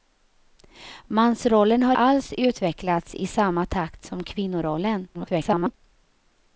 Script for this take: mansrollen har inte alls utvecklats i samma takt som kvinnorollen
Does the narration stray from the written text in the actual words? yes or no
yes